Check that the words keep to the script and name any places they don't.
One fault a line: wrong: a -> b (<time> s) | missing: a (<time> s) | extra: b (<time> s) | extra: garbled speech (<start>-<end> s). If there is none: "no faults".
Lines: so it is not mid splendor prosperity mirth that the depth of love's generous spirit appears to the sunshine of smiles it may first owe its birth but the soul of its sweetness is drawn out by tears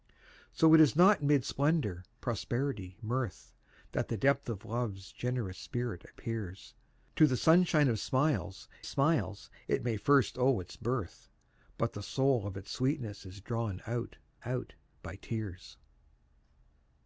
extra: smiles (8.8 s)
extra: out (14.4 s)